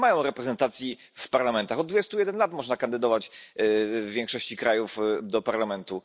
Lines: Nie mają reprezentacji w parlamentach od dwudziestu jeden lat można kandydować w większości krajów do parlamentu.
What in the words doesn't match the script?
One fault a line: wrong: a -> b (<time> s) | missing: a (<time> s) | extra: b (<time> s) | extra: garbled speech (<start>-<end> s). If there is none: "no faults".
no faults